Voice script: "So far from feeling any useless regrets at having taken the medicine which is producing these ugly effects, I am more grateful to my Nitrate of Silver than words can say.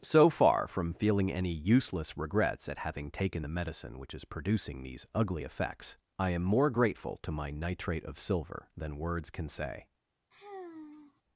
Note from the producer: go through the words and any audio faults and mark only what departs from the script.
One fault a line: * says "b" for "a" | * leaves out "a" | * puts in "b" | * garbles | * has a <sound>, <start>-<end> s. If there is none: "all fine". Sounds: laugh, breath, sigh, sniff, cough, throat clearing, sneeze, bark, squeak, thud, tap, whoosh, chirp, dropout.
* has a sigh, 10.3-11.2 s